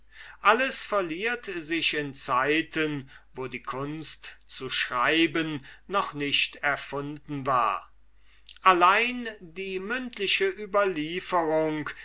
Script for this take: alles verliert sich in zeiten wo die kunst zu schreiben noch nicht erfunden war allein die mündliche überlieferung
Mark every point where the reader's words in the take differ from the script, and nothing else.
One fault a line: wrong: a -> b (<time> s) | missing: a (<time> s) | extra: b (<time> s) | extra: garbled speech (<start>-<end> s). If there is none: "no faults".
no faults